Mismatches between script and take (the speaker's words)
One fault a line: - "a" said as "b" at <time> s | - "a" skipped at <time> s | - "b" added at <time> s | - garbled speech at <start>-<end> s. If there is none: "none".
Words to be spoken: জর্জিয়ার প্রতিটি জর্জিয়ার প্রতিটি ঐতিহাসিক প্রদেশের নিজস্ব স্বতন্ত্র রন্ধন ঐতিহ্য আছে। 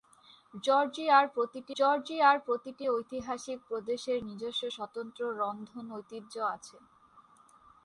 none